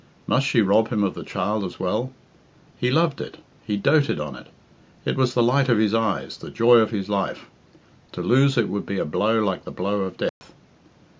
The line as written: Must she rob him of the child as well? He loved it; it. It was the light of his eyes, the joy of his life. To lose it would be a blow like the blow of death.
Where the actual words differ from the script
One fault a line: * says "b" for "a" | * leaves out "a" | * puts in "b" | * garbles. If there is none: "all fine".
* puts in "he doted on"